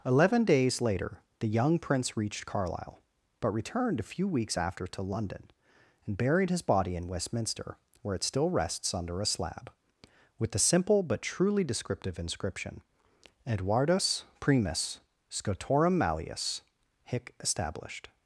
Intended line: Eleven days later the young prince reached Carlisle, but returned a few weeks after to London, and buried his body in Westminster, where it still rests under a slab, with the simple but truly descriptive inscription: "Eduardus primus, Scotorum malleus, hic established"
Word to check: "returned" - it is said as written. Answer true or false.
true